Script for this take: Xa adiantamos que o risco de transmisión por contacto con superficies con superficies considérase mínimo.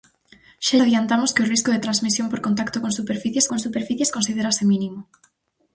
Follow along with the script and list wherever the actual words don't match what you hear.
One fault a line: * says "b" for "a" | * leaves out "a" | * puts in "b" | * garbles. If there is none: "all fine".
all fine